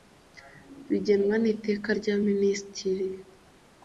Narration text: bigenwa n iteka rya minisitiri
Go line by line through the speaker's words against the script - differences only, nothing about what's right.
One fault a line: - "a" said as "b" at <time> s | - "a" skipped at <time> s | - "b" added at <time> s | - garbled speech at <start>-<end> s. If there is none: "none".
none